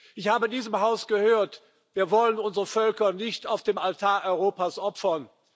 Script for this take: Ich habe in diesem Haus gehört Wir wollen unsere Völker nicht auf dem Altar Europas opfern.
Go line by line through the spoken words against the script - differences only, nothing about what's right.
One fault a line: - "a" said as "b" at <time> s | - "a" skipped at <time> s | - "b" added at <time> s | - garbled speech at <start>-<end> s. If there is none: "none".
none